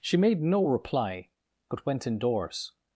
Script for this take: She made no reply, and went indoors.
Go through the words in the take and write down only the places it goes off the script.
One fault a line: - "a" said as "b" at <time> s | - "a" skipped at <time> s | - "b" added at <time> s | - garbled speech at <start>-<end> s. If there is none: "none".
- "and" said as "but" at 1.7 s